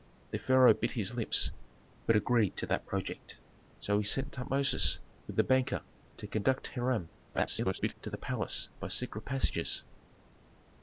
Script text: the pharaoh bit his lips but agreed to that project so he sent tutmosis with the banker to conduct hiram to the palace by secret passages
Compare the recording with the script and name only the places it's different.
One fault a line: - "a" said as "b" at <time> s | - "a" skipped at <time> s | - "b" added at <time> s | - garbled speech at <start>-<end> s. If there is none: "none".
- garbled speech at 7.3-7.9 s